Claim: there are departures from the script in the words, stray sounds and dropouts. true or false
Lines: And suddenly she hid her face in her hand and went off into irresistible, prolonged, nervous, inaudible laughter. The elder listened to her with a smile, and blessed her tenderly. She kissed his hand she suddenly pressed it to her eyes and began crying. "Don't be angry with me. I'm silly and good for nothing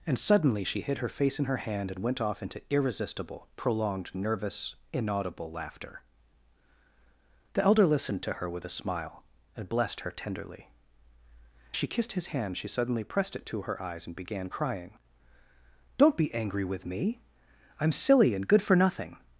false